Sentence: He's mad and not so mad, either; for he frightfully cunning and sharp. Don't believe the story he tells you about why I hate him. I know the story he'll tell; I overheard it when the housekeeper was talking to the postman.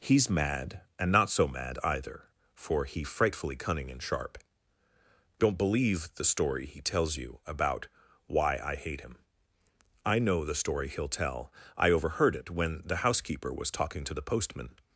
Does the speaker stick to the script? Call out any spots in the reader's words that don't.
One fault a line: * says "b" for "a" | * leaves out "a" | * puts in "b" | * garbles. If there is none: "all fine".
all fine